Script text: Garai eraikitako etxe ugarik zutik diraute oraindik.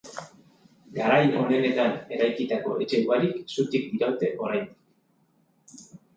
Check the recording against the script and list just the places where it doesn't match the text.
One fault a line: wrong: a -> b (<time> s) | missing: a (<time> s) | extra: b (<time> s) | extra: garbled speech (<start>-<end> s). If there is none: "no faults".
extra: onenetan (1.4 s)